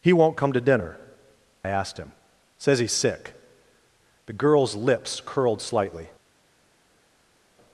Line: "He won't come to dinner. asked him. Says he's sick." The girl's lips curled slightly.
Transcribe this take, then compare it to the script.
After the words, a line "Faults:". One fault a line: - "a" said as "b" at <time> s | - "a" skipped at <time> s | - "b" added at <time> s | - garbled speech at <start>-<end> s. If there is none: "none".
"He won't come to dinner. asked him. Says he's sick." The girl's lips curled slightly.
Faults:
none